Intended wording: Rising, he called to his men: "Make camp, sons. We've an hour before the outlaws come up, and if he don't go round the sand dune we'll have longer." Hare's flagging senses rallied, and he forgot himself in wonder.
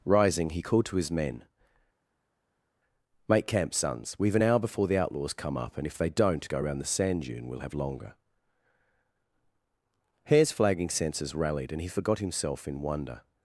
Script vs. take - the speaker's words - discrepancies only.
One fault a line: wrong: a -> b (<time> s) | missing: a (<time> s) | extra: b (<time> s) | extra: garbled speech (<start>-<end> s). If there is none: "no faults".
wrong: he -> they (6.0 s)